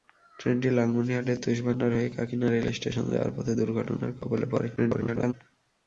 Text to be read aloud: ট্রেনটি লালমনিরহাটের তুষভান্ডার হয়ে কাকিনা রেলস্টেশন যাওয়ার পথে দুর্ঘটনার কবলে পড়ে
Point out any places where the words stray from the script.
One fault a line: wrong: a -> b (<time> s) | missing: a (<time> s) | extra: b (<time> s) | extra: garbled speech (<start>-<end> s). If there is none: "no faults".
extra: garbled speech (4.8-5.3 s)